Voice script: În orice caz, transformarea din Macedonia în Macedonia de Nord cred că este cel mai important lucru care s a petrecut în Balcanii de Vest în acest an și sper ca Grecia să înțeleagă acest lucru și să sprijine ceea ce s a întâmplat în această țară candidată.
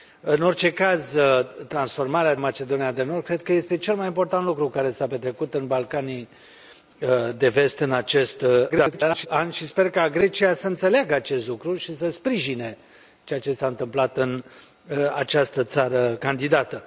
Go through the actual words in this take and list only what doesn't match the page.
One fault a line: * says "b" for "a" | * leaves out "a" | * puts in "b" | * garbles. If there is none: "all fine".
* leaves out "din Macedonia"
* garbles